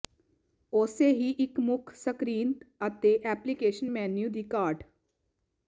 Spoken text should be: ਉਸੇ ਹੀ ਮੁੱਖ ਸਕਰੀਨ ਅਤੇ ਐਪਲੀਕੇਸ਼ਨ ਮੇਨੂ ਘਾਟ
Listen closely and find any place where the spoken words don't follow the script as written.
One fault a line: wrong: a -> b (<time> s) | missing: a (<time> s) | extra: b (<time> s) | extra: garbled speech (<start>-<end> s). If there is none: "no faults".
extra: ਇੱਕ (1.4 s)
extra: ਦੀ (4.3 s)